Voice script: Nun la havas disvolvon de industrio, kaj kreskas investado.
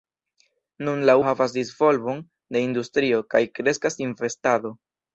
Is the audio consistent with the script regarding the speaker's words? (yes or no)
yes